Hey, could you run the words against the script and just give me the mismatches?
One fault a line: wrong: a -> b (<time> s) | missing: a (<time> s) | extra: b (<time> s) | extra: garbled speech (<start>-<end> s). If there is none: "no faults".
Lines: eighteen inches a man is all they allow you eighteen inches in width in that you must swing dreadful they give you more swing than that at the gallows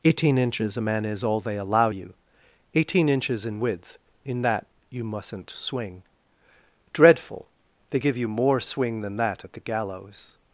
wrong: must -> mustn't (5.0 s)